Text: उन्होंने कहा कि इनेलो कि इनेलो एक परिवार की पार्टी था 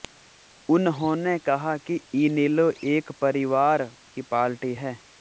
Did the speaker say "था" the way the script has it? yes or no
no